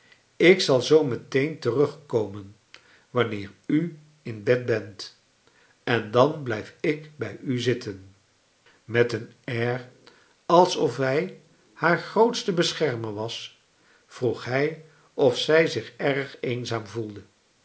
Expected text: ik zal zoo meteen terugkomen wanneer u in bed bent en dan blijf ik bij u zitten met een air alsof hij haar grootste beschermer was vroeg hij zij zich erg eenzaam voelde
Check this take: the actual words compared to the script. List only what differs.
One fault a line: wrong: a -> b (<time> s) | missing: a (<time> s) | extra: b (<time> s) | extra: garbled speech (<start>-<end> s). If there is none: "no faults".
extra: of (15.1 s)